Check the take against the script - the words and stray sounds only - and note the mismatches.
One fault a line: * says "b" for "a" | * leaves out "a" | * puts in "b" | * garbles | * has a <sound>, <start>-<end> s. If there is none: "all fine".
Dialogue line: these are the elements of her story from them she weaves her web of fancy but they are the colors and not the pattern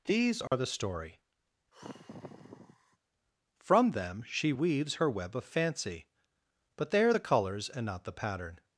* has a dropout, 0.5-0.5 s
* leaves out "elements of her"
* has a sigh, 1.7-3.0 s